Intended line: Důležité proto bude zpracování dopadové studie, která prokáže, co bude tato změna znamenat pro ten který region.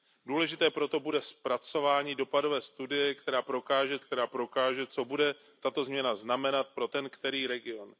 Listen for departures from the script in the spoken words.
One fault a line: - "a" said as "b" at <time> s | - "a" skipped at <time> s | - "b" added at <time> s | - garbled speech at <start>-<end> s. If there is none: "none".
- "která prokáže" added at 4.0 s